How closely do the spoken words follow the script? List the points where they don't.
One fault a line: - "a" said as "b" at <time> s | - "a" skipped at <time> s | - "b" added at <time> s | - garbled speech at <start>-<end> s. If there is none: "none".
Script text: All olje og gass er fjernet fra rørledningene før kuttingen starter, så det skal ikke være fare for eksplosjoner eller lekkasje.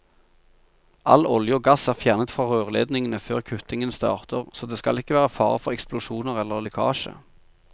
none